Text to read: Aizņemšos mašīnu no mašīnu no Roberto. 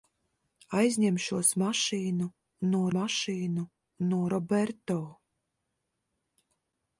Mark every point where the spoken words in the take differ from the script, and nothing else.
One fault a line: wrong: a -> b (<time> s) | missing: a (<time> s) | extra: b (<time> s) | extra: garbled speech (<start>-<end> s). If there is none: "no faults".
no faults